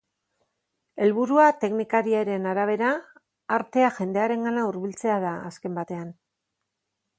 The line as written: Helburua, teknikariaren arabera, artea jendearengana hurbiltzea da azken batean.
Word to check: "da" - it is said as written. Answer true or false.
true